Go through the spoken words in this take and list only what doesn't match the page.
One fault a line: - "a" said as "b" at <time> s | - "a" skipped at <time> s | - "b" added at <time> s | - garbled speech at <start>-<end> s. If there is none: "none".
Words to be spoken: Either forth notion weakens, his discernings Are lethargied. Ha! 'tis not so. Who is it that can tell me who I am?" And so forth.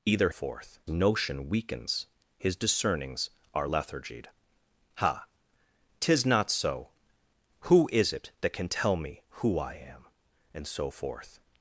none